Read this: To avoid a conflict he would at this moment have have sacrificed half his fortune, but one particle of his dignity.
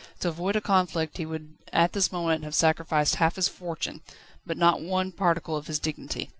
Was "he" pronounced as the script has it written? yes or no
yes